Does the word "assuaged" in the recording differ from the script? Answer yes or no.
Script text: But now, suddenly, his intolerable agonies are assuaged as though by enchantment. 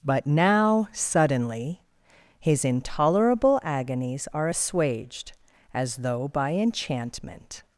no